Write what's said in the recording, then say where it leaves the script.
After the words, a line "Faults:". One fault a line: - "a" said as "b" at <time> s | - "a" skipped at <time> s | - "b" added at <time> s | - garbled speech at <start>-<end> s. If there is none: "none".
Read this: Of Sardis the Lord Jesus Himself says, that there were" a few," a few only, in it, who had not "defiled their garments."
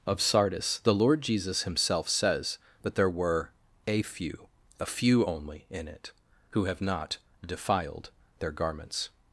Of Sardis the Lord Jesus Himself says, that there were" a few," a few only, in it, who have not "defiled their garments."
Faults:
- "had" said as "have" at 6.6 s